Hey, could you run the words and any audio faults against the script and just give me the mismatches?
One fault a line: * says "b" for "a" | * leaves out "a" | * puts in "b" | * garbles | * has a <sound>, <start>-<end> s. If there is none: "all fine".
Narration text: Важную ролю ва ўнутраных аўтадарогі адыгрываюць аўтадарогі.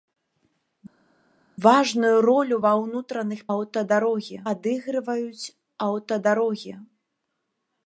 all fine